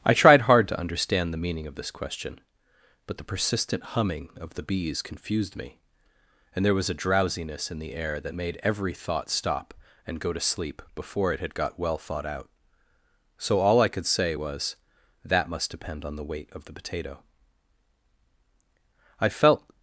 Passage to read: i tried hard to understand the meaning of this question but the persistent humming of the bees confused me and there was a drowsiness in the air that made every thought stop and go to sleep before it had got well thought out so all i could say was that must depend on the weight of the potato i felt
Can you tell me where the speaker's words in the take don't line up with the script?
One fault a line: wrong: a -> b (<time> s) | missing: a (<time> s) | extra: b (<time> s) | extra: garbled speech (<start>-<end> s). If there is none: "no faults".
no faults